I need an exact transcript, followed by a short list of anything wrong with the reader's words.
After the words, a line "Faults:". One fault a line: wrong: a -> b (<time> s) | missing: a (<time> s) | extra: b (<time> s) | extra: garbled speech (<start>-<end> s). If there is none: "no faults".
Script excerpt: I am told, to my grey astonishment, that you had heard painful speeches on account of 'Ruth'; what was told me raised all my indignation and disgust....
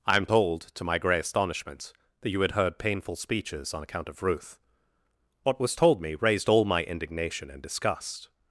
I am told, to my grey astonishment, that you had heard painful speeches on account of 'Ruth'; what was told me raised all my indignation and disgust....
Faults:
no faults